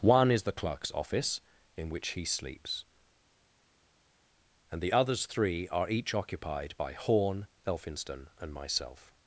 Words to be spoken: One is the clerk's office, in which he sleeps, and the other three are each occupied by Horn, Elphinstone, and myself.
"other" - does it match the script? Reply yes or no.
no